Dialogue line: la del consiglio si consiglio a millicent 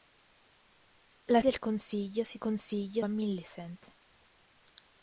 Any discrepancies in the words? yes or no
no